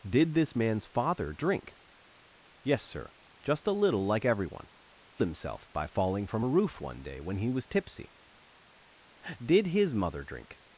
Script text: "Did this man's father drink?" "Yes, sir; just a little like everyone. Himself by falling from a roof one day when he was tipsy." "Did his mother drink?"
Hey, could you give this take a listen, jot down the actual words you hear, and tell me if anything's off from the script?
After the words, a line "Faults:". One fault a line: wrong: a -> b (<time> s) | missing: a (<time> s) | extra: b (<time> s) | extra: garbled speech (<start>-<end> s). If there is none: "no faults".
"Did this man's father drink?" "Yes, sir; just a little like everyone. Himself by falling from a roof one day when he was tipsy." "Did his mother drink?"
Faults:
no faults